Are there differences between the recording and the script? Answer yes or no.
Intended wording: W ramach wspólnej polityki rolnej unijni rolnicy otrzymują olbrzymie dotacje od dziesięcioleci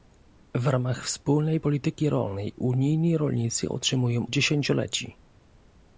yes